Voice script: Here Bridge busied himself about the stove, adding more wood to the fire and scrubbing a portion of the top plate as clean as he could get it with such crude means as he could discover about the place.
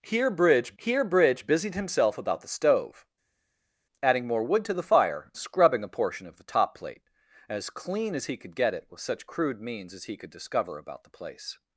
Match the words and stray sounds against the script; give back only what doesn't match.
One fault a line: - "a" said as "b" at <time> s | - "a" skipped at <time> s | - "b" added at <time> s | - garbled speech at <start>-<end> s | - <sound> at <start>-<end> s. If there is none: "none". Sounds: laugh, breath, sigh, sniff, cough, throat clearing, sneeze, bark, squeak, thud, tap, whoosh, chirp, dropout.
- "here Bridge" added at 0.8 s
- "and" skipped at 5.3 s